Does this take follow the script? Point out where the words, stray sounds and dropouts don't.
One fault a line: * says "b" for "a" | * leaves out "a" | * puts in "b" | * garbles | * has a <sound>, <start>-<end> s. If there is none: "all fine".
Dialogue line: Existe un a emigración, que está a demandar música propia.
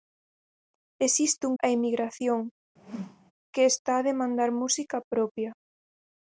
* has a whoosh, 2.8-3.3 s